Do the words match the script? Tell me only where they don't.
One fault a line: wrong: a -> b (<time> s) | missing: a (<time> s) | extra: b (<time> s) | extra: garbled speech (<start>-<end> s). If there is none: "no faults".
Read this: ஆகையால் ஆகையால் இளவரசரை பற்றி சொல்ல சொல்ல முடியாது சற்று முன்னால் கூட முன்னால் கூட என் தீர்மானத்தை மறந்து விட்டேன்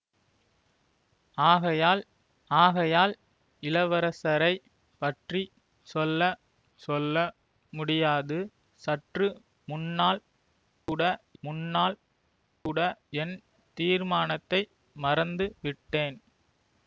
no faults